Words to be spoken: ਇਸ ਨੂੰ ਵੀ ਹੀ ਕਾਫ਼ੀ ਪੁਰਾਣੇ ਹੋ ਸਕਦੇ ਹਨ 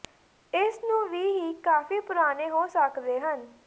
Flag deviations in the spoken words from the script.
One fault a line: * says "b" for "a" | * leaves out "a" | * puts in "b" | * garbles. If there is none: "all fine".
all fine